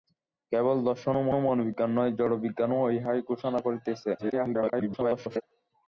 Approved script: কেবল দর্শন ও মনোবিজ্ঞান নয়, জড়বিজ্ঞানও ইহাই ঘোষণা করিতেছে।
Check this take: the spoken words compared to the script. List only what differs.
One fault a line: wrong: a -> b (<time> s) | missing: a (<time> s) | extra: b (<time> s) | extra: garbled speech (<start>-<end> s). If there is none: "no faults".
extra: ও (1.3 s)
extra: garbled speech (4.2-5.4 s)